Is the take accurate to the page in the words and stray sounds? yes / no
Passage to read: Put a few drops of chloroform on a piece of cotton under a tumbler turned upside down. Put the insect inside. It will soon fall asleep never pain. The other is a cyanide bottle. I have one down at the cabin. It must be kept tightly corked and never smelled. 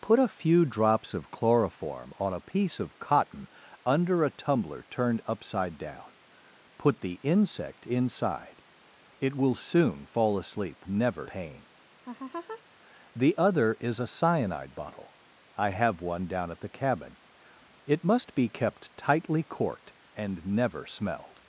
no